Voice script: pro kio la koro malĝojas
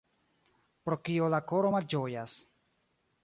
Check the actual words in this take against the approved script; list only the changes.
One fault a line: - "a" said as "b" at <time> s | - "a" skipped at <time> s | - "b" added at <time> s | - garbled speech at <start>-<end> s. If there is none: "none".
none